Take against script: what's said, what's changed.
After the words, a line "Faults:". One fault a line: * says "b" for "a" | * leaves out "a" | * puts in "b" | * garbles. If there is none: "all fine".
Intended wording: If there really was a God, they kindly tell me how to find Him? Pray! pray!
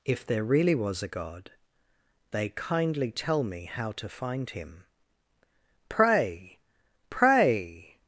If there really was a God, they kindly tell me how to find Him? Pray! pray!
Faults:
all fine